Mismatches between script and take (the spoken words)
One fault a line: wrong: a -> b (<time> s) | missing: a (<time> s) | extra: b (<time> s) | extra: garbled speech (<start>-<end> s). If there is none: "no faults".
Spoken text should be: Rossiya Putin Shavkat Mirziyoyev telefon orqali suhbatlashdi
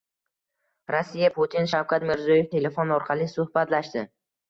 no faults